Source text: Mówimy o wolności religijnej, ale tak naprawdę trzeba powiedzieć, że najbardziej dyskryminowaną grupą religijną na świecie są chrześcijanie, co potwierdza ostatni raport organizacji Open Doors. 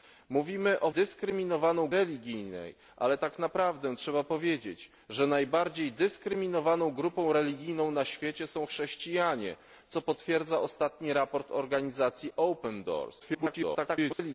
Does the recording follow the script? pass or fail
fail